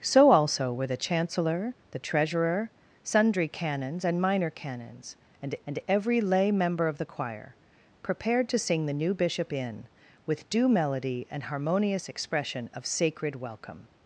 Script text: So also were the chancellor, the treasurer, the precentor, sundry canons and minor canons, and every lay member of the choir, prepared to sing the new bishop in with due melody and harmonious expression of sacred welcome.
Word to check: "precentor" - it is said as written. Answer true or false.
false